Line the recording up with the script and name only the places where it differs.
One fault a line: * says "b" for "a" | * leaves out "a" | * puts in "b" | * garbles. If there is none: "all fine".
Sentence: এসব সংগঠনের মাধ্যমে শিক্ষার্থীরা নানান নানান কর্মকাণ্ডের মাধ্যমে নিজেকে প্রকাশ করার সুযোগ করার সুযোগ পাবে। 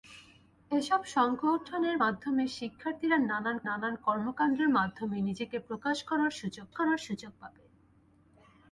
all fine